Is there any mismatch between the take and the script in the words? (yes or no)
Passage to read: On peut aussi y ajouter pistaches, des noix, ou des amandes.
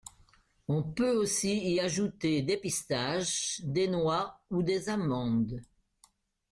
yes